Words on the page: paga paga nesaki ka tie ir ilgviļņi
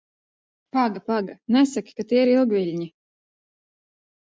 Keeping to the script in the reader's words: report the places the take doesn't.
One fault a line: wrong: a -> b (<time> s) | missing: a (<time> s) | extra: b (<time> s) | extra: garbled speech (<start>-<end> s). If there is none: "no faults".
no faults